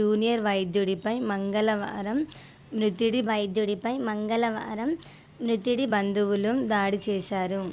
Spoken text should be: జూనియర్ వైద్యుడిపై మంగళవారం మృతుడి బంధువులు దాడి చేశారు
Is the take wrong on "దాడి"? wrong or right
right